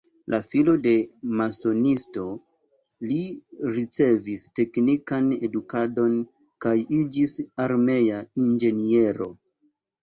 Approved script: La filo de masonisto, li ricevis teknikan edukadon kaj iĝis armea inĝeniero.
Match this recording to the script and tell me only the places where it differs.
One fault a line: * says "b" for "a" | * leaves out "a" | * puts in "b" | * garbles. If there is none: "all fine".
all fine